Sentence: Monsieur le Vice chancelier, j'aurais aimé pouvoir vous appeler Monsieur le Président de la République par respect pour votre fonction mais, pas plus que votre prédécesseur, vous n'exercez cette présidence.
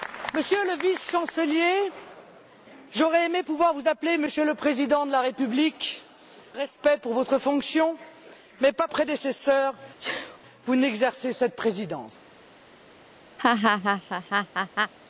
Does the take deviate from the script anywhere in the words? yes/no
yes